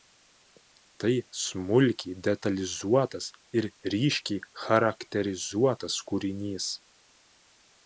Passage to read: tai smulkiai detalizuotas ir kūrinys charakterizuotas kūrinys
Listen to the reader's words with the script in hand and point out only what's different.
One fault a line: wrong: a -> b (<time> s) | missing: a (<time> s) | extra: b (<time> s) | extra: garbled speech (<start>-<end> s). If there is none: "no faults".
wrong: kūrinys -> ryškiai (4.0 s)